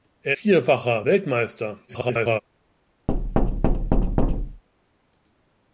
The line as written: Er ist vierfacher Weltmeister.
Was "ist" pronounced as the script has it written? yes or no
no